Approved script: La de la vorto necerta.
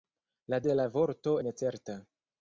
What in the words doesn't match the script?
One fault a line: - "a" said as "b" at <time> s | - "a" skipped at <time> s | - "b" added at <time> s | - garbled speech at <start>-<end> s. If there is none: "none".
none